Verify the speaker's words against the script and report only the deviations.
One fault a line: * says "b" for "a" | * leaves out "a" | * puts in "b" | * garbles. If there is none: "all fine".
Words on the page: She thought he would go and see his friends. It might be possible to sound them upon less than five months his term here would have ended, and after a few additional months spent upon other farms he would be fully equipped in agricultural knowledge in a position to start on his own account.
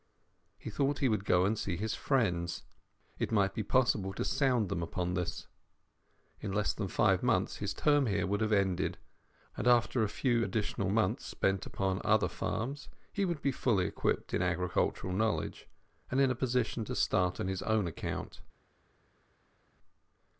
* says "He" for "She"
* puts in "this In"
* puts in "and"